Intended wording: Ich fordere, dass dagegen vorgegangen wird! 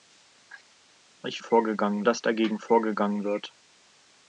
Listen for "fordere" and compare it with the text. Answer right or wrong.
wrong